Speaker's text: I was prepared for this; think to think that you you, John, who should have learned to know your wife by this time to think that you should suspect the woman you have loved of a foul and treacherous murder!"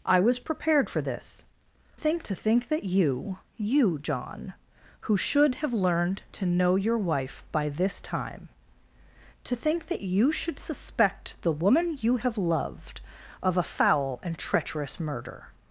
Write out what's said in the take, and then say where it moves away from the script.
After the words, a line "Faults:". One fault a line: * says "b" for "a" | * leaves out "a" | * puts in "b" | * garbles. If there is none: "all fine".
I was prepared for this; think to think that you you, John, who should have learned to know your wife by this time to think that you should suspect the woman you have loved of a foul and treacherous murder!"
Faults:
all fine